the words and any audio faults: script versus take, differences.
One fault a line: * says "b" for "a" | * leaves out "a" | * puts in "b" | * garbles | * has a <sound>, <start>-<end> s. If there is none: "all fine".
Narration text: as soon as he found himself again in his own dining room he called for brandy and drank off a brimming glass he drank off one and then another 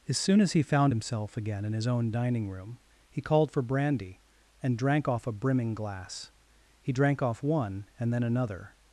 all fine